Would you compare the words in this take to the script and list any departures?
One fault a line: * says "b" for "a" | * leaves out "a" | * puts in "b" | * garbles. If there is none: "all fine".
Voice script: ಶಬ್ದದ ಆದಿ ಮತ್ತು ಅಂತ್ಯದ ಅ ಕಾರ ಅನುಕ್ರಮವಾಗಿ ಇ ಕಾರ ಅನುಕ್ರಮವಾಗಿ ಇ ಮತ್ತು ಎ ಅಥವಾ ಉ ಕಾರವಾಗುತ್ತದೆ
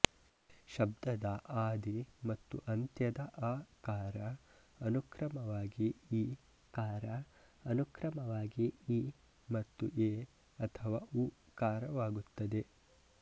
all fine